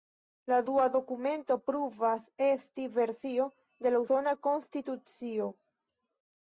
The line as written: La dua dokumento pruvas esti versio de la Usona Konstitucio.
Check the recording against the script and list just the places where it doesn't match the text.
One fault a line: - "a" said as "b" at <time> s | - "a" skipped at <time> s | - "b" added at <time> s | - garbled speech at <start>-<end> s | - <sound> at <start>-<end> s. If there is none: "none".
none